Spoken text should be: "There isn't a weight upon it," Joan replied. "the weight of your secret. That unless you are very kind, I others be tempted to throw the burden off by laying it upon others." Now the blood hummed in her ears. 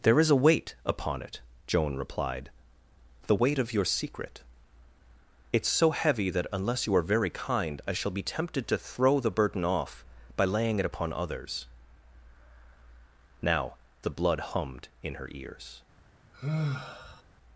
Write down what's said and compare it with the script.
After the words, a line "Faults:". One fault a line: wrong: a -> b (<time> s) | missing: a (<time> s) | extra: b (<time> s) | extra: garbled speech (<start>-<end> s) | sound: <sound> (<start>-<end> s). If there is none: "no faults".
"There is a weight upon it," Joan replied. "the weight of your secret. It's so heavy that unless you are very kind, I shall be tempted to throw the burden off by laying it upon others." Now the blood hummed in her ears.
Faults:
wrong: isn't -> is (0.2 s)
extra: It's so heavy (5.5 s)
wrong: others -> shall (7.9 s)
sound: sigh (16.3-17.2 s)